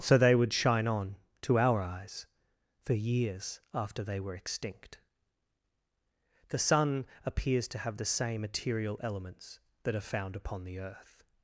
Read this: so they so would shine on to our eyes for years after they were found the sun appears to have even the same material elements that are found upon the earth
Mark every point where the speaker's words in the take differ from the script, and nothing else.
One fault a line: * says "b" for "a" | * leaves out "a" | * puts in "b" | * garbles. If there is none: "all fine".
* leaves out "so"
* says "extinct" for "found"
* leaves out "even"